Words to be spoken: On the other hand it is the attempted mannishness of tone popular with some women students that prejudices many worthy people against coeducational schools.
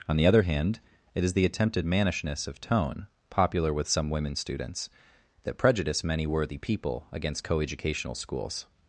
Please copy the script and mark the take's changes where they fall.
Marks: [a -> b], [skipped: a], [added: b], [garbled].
On the other hand it is the attempted mannishness of tone popular with some women students that [prejudices -> prejudice] many worthy people against coeducational schools.